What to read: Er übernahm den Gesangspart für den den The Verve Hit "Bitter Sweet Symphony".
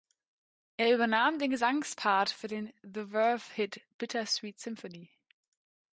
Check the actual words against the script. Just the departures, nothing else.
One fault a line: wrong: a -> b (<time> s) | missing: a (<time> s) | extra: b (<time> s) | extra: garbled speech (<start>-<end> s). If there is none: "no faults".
missing: den (2.7 s)